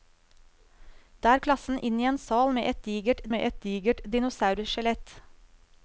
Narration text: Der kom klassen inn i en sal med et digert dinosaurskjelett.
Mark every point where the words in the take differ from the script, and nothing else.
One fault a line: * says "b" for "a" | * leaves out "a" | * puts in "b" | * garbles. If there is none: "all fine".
* leaves out "kom"
* puts in "med et digert"